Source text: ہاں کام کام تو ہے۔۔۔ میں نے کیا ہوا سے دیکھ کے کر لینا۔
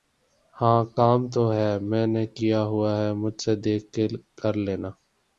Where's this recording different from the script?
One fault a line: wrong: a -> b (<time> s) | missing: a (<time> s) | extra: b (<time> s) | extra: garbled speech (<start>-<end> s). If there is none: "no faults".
missing: کام (1.2 s)
extra: ہے مجھ (3.0 s)